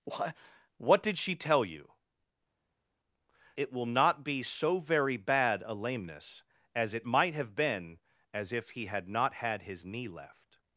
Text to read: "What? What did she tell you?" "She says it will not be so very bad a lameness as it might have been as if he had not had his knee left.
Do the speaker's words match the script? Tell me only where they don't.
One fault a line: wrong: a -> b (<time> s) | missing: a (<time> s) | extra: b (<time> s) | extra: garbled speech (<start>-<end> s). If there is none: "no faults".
missing: She says (1.9 s)